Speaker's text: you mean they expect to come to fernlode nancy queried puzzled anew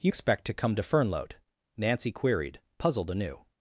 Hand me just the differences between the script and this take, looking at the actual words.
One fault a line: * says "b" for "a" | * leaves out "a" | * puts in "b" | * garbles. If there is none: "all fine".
* leaves out "mean they"